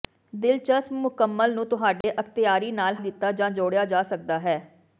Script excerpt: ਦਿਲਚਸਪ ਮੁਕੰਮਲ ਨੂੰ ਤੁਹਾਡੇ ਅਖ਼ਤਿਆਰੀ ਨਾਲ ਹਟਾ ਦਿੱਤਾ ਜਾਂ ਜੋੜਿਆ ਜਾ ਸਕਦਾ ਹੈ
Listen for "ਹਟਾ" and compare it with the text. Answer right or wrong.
wrong